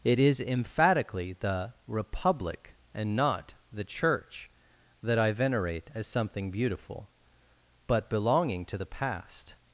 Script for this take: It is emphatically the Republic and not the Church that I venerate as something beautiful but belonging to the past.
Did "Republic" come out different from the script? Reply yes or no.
no